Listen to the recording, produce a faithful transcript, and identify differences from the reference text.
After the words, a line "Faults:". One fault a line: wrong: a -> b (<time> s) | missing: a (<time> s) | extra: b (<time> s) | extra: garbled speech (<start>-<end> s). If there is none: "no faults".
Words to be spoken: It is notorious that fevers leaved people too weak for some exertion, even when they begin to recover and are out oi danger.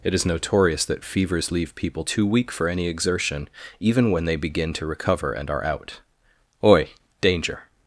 It is notorious that fevers leave people too weak for any exertion, even when they begin to recover and are out oi danger.
Faults:
wrong: leaved -> leave (1.5 s)
wrong: some -> any (2.7 s)